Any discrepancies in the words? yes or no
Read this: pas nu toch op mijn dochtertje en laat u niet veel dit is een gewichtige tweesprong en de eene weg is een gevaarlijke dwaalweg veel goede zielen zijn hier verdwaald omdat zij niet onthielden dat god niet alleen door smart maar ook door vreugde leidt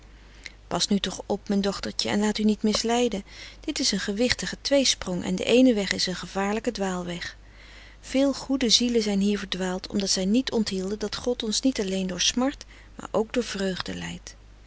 yes